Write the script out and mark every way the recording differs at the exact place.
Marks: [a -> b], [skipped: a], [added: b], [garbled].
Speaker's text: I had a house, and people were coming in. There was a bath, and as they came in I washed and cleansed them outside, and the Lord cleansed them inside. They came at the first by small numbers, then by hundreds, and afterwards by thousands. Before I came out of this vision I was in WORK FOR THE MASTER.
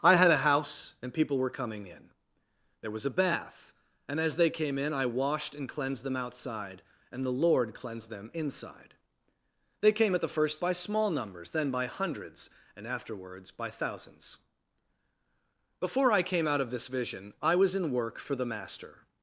I had a house, and people were coming in. There was a bath, and as they came in I washed and cleansed them outside, and the Lord cleansed them inside. They came at the first by small numbers, then by hundreds, and afterwards by thousands. Before I came out of this vision I was in WORK FOR THE MASTER.